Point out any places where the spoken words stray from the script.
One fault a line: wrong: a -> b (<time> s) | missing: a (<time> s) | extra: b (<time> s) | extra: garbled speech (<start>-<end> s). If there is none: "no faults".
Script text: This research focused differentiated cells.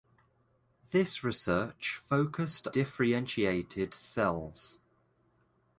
no faults